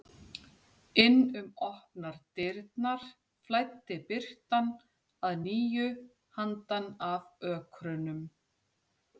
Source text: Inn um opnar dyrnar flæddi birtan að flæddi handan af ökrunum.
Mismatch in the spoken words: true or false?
true